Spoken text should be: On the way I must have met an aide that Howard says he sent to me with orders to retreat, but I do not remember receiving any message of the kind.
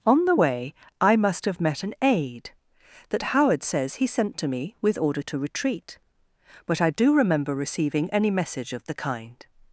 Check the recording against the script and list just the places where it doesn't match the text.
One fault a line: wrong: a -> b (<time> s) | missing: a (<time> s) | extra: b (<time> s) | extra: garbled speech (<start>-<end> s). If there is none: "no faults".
wrong: orders -> order (5.0 s)
missing: not (7.1 s)